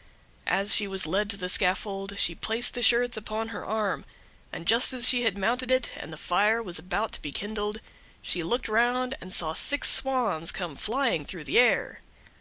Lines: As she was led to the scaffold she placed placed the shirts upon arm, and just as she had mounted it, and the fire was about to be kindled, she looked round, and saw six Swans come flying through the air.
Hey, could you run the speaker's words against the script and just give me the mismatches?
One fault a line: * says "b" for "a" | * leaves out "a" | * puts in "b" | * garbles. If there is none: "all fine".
* leaves out "placed"
* puts in "her"